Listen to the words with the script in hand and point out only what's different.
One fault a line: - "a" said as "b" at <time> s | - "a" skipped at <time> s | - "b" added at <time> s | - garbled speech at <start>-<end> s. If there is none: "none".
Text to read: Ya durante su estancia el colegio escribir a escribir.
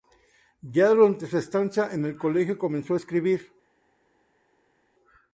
- "en" added at 1.9 s
- "escribir" said as "comenzó" at 2.6 s